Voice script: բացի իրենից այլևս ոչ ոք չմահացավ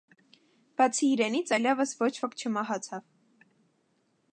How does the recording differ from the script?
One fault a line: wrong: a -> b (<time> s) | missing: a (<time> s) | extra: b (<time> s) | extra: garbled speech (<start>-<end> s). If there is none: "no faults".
no faults